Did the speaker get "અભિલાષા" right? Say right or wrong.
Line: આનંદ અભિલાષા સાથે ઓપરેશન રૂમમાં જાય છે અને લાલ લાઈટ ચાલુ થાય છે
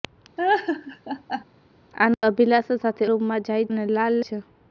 right